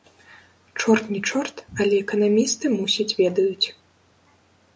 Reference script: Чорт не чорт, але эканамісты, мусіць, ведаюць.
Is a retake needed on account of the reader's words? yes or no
no